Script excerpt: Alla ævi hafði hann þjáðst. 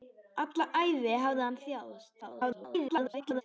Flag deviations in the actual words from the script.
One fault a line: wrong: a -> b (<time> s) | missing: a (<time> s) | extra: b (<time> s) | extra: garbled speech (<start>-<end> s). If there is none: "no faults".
extra: garbled speech (2.2-3.4 s)